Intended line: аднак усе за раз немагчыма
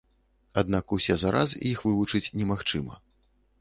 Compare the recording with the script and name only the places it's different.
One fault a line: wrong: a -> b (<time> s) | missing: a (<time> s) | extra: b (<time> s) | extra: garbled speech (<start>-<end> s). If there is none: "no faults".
extra: іх вывучыць (1.7 s)